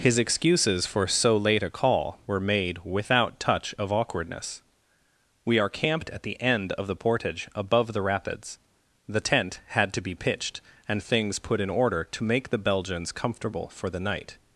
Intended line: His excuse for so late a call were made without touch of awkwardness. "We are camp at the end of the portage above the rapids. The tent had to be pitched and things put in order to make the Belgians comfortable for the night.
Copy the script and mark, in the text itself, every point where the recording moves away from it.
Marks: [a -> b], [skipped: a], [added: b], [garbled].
His [excuse -> excuses] for so late a call were made without touch of awkwardness. "We are [camp -> camped] at the end of the portage above the rapids. The tent had to be pitched and things put in order to make the Belgians comfortable for the night.